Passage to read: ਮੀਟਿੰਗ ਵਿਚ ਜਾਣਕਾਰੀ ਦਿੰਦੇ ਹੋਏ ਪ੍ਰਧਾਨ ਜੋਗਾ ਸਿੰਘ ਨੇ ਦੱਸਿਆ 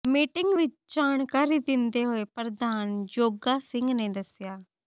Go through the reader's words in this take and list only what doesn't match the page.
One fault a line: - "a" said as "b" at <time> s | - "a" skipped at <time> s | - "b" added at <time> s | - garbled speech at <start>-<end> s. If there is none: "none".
none